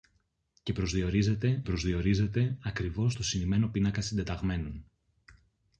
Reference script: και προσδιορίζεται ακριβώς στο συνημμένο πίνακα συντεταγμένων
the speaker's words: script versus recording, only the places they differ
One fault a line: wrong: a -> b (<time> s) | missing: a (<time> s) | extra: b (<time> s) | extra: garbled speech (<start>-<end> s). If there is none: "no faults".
extra: προσδιορίζεται (1.6 s)